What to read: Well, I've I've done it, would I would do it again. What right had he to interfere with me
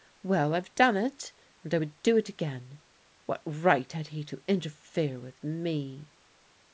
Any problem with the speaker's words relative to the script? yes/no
yes